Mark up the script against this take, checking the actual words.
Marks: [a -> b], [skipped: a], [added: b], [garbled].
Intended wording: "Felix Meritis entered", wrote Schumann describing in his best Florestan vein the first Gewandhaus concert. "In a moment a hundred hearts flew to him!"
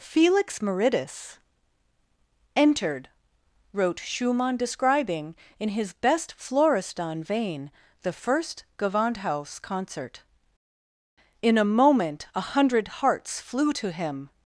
"Felix Meritis entered", wrote Schumann describing in his best Florestan vein the first Gewandhaus concert. "In a moment a hundred hearts flew to him!"